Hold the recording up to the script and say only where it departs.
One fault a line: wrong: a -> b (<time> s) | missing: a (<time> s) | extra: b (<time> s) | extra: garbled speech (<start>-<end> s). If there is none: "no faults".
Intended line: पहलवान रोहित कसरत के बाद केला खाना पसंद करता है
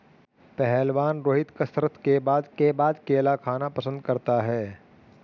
extra: के बाद (2.5 s)